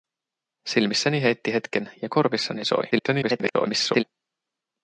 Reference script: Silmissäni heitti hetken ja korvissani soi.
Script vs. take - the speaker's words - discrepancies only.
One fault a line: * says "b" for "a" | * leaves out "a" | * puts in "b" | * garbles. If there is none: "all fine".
* garbles